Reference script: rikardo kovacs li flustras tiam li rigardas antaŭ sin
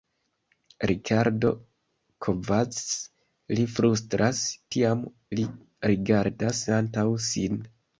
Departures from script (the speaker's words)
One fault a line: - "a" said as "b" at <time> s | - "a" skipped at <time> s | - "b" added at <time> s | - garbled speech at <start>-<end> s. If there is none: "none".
none